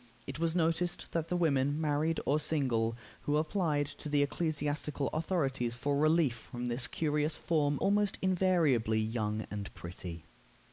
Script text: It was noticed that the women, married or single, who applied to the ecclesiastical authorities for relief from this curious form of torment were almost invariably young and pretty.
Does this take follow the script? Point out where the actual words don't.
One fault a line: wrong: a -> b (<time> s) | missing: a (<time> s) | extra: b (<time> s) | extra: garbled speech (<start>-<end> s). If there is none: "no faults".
missing: of torment were (7.8 s)